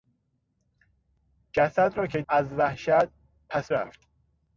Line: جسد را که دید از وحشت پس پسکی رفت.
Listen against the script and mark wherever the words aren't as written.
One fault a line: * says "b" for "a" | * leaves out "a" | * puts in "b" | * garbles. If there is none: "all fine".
* leaves out "دید"
* leaves out "پسکی"